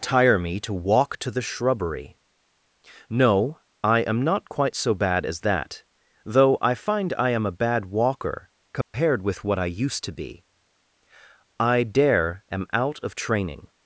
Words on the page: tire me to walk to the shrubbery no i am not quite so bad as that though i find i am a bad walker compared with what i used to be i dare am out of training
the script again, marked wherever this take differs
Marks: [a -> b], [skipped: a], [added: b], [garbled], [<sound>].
tire me to walk to the shrubbery no i am not quite so bad as that though i find i am a bad walker compared [dropout] with what i used to be i dare am out of training